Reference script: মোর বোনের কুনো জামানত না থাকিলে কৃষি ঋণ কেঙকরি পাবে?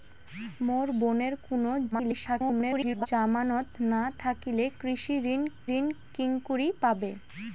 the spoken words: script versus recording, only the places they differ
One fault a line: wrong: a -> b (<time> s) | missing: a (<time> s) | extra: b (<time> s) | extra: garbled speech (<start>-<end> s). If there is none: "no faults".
extra: garbled speech (1.9-3.1 s)
extra: ঋণ (5.7 s)